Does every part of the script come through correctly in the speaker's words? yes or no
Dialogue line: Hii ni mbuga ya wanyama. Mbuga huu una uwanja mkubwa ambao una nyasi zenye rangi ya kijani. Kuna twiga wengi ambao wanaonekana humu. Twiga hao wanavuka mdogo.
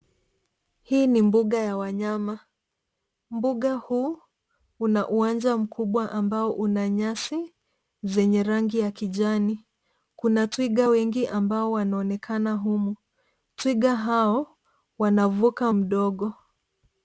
yes